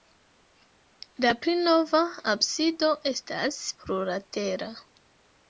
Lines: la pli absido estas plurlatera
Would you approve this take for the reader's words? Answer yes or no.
no